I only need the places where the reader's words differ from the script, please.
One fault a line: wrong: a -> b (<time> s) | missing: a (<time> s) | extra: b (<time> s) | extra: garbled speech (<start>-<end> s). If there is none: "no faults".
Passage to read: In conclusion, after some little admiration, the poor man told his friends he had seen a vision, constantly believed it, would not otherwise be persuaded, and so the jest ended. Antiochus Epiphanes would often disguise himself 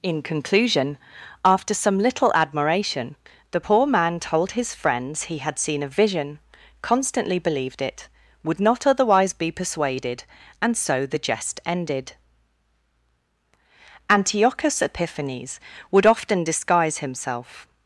no faults